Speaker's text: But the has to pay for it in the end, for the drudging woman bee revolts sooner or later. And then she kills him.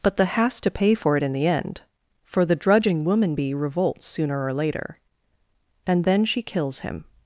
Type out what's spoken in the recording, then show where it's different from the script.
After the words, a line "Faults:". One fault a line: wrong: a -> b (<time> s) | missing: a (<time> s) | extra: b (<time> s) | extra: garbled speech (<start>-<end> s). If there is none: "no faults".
But the has to pay for it in the end, for the drudging woman bee revolts sooner or later. And then she kills him.
Faults:
no faults